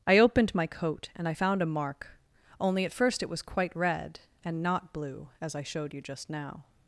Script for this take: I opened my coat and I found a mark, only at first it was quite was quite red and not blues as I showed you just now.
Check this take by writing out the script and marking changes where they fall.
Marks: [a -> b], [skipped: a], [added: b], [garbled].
I opened my coat and I found a mark, only at first it was quite [skipped: was quite] red and not [blues -> blue] as I showed you just now.